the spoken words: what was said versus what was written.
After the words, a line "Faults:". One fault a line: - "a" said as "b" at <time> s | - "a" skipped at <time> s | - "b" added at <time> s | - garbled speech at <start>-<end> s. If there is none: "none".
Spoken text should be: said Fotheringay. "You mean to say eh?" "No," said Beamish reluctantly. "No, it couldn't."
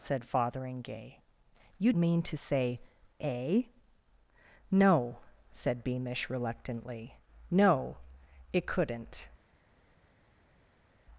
said Fotheringay. "You mean to say eh?" "No," said Beamish reluctantly. "No, it couldn't."
Faults:
none